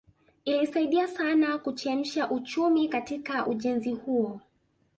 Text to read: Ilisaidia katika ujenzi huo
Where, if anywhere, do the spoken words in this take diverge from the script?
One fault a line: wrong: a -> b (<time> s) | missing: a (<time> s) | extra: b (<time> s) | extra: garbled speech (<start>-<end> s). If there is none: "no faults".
extra: sana kuchemsha uchumi (1.1 s)